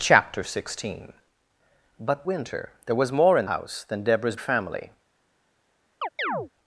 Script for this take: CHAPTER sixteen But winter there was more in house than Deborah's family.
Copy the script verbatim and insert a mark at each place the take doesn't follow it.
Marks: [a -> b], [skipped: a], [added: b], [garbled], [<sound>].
CHAPTER sixteen But winter there was more in house than Deborah's family. [chirp]